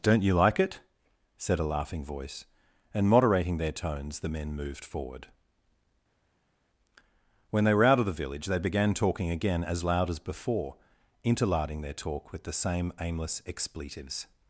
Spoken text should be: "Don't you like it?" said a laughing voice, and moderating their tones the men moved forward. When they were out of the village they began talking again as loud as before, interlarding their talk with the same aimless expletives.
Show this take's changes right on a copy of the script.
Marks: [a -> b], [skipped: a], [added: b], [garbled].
"Don't you like it?" said a laughing voice, and moderating their tones the men moved forward. When they were out of the village they began talking again as loud as before, interlarding their talk with the same aimless expletives.